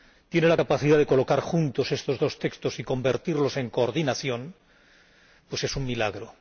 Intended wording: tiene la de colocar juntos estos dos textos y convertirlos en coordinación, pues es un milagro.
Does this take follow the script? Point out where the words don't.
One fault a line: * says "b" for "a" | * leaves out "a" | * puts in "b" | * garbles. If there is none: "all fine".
* puts in "capacidad"